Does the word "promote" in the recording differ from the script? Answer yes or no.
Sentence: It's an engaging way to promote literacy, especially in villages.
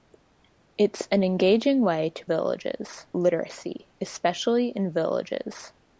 yes